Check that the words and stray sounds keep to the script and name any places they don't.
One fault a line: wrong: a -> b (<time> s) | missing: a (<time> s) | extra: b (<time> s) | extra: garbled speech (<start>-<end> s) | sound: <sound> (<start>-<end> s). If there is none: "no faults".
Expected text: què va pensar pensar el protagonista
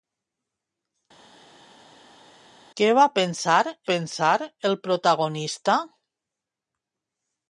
no faults